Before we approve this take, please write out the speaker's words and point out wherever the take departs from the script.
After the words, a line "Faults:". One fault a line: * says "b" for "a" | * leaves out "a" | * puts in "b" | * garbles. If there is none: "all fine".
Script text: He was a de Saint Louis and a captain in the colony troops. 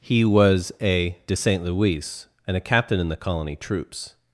He was a de Saint Louis and a captain in the colony troops.
Faults:
all fine